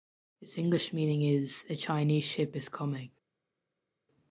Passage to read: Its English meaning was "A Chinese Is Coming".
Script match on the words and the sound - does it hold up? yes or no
no